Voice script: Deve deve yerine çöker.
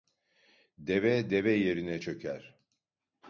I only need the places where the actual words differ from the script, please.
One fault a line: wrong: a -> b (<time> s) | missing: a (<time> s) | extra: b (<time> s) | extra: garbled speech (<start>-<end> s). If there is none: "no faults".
no faults